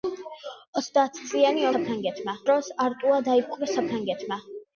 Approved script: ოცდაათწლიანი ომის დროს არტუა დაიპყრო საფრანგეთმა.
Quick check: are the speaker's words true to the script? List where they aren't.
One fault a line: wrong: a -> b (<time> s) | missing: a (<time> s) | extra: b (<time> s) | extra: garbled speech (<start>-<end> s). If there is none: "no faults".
wrong: ომის -> საფრანგეთმა (1.7 s)